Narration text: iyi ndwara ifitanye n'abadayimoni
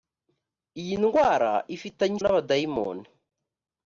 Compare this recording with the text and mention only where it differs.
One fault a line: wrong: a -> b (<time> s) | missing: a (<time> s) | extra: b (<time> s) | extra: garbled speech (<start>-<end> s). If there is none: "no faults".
no faults